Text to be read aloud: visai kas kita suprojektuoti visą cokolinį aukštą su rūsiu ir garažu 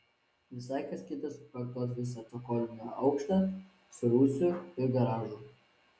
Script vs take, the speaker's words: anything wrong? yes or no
no